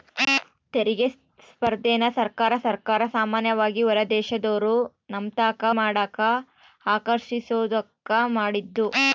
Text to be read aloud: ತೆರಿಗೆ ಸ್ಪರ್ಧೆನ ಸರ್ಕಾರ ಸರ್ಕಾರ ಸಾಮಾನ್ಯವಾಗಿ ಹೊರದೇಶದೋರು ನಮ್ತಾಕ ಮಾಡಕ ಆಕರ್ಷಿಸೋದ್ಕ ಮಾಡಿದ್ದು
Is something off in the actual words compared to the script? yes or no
no